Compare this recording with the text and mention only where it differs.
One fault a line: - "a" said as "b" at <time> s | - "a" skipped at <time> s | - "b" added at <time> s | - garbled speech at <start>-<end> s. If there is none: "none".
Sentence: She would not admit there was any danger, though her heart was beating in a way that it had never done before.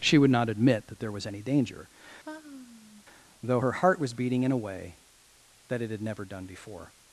- "that" added at 0.9 s